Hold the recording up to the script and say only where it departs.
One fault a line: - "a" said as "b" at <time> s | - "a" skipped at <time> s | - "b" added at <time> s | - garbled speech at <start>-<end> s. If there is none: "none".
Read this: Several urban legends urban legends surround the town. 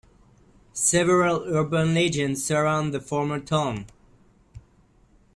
- "urban legends" skipped at 2.4 s
- "former" added at 3.0 s